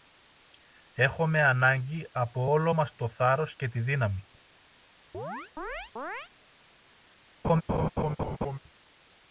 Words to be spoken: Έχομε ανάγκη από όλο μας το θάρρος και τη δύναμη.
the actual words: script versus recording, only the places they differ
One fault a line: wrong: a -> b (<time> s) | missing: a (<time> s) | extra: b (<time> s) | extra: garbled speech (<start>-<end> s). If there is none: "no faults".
no faults